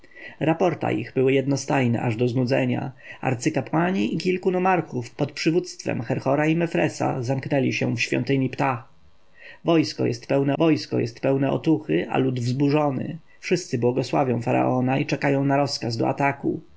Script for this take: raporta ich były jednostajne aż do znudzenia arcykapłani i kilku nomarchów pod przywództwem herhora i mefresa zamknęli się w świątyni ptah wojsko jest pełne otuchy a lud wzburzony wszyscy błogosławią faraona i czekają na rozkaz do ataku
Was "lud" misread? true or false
false